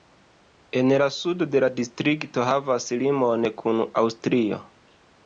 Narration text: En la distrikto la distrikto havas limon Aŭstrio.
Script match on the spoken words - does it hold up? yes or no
no